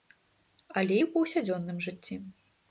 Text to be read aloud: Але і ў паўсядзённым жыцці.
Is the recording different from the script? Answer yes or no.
no